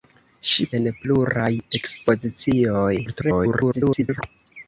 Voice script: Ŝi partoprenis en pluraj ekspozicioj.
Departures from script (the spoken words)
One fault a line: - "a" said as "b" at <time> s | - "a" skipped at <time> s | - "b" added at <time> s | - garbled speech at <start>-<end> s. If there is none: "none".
- "partoprenis" skipped at 0.7 s
- garbled speech at 3.1-4.2 s